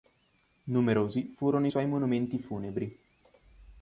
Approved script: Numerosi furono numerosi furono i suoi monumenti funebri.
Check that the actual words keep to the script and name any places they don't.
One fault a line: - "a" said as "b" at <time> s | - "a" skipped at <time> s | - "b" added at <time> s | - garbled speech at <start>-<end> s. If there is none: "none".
- "numerosi furono" skipped at 1.7 s